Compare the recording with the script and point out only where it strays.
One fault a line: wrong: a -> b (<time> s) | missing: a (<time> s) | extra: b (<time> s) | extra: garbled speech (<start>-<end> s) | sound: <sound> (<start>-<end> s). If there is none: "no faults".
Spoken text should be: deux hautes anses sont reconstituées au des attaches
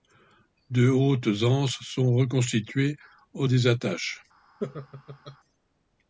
sound: laugh (4.6-5.4 s)